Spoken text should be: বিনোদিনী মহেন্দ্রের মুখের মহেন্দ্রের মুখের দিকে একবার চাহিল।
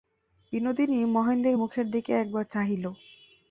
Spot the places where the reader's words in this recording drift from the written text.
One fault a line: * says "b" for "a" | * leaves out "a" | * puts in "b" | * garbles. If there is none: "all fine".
* leaves out "মহেন্দ্রের মুখের"